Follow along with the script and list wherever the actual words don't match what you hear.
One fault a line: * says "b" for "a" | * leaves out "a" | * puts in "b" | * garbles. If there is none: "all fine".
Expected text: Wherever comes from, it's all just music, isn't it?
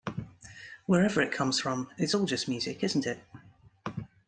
* puts in "it"